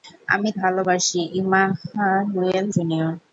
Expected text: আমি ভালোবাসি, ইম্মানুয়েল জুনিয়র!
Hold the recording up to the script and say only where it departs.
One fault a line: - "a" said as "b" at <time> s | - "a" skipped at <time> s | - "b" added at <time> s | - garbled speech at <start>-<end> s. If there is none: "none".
none